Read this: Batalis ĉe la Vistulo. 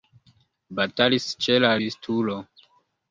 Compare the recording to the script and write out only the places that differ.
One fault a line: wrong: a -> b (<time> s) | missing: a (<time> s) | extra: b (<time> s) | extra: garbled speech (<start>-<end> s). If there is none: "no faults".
no faults